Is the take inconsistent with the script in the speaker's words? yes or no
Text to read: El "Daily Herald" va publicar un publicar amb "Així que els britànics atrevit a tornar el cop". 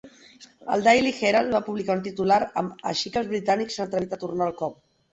yes